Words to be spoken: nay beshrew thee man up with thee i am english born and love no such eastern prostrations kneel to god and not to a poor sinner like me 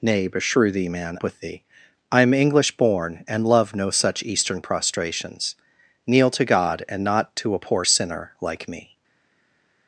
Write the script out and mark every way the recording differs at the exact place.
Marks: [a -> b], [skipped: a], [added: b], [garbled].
nay beshrew thee man [skipped: up] with thee i am english born and love no such eastern prostrations kneel to god and not to a poor sinner like me